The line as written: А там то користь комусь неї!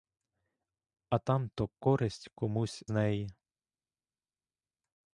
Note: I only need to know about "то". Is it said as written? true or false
true